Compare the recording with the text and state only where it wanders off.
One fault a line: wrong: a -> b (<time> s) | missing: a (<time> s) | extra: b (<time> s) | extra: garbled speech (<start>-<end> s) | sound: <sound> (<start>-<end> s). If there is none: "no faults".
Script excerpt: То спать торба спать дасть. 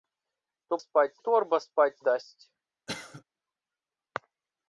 sound: cough (2.9-3.2 s)